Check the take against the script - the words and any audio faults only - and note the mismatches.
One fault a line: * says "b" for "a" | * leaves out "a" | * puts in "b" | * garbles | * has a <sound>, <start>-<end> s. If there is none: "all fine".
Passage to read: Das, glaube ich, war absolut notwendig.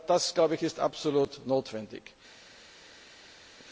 * says "ist" for "war"